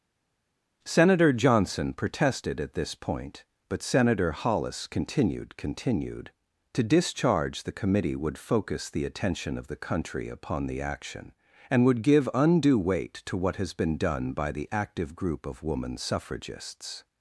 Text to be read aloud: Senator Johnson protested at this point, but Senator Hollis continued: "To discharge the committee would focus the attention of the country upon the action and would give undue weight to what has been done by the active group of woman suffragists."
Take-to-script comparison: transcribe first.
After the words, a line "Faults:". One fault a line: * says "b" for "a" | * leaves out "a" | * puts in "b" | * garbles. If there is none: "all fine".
Senator Johnson protested at this point, but Senator Hollis continued continued: "To discharge the committee would focus the attention of the country upon the action and would give undue weight to what has been done by the active group of woman suffragists."
Faults:
* puts in "continued"